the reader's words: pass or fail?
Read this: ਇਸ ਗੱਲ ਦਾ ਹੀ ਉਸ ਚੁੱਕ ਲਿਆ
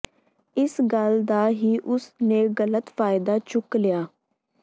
fail